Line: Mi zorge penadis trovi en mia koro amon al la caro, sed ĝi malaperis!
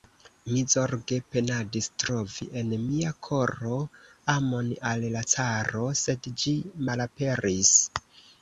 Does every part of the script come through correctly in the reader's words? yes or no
yes